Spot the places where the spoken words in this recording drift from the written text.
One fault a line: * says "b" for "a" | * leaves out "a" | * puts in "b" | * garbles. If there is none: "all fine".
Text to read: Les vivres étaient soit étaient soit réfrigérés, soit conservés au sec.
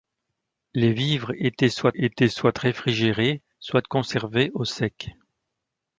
all fine